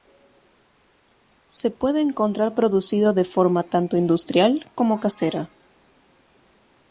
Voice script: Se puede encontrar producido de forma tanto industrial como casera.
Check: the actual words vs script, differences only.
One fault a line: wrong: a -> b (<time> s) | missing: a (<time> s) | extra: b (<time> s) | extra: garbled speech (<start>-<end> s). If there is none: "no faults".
no faults